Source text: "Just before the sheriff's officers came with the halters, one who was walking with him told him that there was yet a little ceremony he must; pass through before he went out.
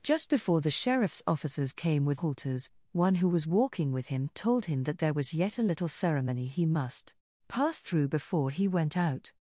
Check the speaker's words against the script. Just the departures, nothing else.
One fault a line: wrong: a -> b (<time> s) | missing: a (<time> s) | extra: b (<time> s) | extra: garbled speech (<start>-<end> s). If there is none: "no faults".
missing: the (2.2 s)